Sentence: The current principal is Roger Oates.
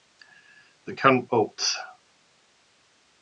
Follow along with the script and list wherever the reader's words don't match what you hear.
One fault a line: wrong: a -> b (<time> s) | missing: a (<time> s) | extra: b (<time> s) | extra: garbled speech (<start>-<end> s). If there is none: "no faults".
missing: principal is Roger (1.3 s)